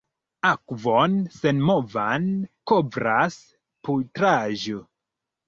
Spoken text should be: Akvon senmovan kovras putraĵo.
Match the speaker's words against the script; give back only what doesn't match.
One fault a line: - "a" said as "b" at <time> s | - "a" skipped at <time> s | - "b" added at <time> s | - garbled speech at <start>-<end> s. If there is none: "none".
none